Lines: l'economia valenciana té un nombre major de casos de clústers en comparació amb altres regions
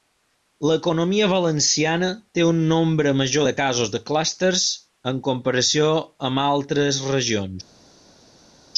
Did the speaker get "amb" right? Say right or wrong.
right